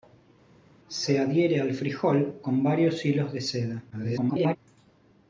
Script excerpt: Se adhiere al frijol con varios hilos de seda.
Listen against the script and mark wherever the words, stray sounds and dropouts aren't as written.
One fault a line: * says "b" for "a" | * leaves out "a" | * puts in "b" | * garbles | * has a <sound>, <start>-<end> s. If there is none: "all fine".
* garbles